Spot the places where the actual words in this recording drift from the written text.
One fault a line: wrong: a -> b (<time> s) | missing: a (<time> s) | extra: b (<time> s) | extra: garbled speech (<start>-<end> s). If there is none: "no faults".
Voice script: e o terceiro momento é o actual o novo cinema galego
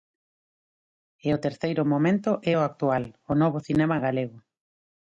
no faults